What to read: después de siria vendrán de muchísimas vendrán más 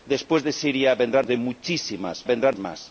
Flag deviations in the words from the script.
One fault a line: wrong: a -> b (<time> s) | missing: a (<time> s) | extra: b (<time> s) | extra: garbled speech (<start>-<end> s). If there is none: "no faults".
no faults